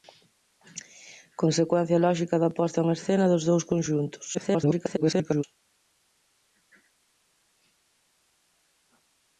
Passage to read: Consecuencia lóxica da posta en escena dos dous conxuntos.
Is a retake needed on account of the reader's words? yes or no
yes